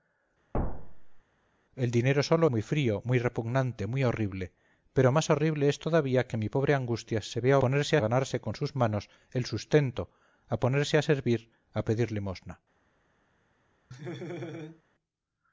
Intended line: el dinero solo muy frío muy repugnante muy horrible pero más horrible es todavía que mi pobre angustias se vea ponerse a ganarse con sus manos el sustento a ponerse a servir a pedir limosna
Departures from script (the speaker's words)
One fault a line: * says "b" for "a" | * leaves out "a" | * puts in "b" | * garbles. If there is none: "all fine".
all fine